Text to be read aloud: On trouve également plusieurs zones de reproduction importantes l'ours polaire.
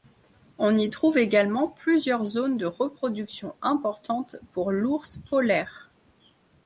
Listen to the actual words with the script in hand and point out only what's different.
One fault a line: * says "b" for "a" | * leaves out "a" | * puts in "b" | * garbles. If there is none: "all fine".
* puts in "y"
* puts in "pour"